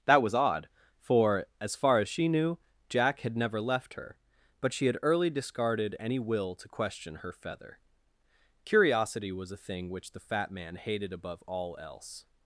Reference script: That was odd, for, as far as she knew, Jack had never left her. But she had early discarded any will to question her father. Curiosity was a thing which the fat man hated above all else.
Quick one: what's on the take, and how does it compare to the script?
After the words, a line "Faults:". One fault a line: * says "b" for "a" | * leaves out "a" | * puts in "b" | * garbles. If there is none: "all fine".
That was odd, for, as far as she knew, Jack had never left her. But she had early discarded any will to question her feather. Curiosity was a thing which the fat man hated above all else.
Faults:
* says "feather" for "father"